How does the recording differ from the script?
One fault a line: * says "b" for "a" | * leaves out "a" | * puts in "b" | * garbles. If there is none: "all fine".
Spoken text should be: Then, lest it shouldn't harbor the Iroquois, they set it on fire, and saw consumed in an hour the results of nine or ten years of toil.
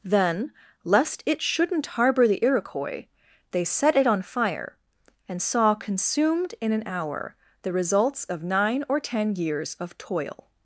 all fine